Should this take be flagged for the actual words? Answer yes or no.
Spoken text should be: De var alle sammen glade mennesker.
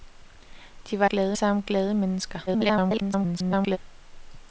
yes